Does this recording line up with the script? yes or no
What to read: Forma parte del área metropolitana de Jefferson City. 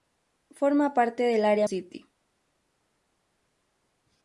no